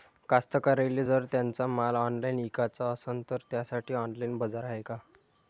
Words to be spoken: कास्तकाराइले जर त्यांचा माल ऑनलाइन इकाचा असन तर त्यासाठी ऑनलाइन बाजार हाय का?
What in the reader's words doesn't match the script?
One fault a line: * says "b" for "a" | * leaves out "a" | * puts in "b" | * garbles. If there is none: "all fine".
all fine